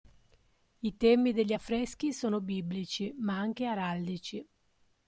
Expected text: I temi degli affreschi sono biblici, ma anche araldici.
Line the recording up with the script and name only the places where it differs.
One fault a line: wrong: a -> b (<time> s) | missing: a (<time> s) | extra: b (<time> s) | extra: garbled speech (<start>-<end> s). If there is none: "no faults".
no faults